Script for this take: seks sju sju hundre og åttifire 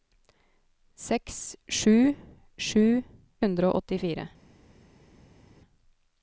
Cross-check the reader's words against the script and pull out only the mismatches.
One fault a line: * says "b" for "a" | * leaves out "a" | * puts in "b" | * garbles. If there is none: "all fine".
all fine